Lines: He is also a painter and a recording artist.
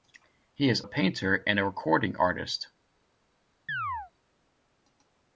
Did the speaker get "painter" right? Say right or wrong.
right